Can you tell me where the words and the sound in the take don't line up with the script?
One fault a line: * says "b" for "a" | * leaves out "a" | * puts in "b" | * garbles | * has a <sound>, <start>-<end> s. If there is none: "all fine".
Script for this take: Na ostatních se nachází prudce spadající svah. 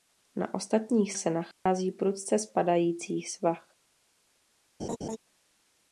* has a dropout, 1.5-1.7 s
* has a laugh, 4.8-5.2 s